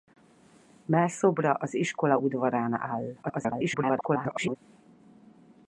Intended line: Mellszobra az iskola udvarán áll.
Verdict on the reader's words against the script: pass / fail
fail